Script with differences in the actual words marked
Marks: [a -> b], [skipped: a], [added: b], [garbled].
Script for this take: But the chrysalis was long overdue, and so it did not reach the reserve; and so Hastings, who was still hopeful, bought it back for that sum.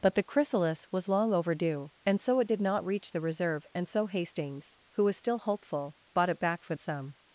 But the chrysalis was long overdue, and so it did not reach the reserve; and so Hastings, who was still hopeful, bought it back for [skipped: that] sum.